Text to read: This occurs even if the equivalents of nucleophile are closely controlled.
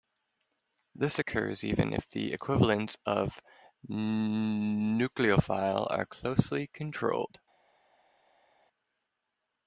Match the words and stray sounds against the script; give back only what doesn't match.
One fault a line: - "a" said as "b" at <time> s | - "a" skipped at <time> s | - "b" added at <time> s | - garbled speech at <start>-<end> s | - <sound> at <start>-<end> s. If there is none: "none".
none